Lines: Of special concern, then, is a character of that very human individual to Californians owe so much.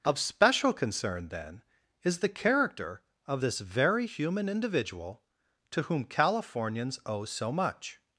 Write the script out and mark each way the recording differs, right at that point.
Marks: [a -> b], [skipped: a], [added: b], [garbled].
Of special concern, then, is [a -> the] character of [that -> this] very human individual to [added: whom] Californians owe so much.